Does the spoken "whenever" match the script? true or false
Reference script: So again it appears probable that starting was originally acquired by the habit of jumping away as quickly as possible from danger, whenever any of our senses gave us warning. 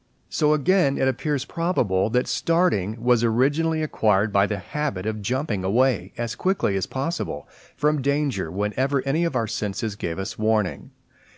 true